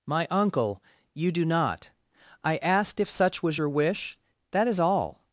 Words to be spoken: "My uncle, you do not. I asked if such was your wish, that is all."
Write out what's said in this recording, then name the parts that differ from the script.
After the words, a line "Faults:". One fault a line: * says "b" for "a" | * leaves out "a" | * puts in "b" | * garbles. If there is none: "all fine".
"My uncle, you do not. I asked if such was your wish, that is all."
Faults:
all fine